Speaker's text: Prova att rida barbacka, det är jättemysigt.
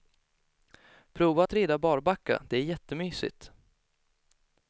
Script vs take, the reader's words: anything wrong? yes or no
no